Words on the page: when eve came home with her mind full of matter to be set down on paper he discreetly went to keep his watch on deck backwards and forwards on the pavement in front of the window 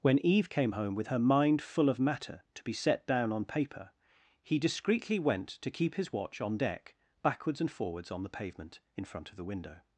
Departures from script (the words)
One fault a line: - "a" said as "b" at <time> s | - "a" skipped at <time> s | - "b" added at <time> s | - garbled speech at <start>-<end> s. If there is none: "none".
none